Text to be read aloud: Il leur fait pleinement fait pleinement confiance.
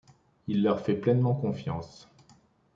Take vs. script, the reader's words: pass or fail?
fail